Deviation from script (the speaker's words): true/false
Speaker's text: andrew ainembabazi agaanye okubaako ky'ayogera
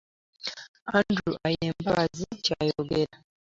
true